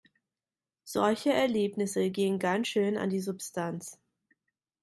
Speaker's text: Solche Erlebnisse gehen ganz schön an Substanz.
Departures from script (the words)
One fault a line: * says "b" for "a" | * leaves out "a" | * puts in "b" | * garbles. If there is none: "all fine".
* puts in "die"